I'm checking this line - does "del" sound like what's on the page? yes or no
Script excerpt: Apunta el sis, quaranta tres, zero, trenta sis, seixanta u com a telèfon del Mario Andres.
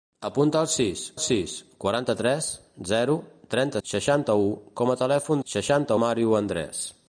no